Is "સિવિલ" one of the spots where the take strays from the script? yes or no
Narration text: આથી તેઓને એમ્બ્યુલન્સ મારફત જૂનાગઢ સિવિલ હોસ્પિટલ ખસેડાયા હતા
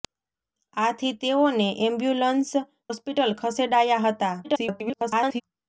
yes